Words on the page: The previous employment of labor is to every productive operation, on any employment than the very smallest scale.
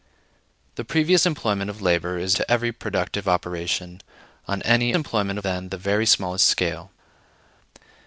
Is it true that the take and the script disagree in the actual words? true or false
false